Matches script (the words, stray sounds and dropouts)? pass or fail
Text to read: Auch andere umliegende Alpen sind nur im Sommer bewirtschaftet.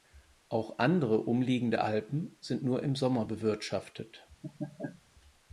fail